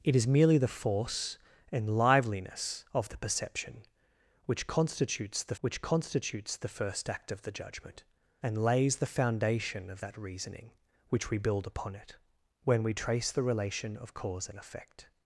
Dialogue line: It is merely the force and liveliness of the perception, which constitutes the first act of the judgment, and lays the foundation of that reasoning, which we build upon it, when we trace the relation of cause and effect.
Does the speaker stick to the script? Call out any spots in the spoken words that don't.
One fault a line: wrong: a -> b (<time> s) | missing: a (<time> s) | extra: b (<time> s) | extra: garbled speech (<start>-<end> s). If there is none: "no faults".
extra: which constitutes the (5.6 s)